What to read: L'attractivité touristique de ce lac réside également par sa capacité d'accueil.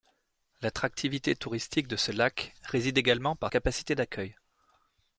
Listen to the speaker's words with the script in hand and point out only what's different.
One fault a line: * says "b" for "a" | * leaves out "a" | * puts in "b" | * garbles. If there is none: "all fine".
* leaves out "sa"